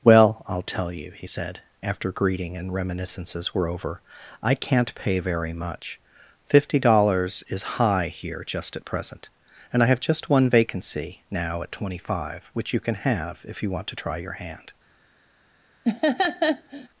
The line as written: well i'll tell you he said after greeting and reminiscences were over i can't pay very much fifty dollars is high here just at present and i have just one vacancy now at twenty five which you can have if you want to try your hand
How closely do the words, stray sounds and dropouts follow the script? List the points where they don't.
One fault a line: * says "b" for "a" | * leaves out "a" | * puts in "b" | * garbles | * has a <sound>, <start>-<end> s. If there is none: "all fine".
* has a laugh, 15.8-16.9 s